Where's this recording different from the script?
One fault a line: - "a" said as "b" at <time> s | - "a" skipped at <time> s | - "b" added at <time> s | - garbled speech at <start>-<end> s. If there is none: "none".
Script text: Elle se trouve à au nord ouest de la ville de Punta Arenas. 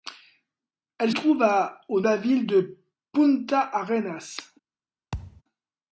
- "se" skipped at 1.1 s
- "nord ouest de" skipped at 2.0 s